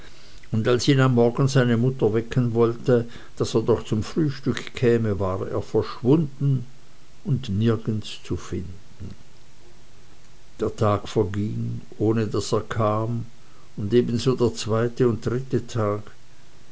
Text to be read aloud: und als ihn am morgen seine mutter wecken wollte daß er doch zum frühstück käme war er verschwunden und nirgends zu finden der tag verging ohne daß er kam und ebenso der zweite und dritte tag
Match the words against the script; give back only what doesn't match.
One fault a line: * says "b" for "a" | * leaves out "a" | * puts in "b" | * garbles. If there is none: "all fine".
all fine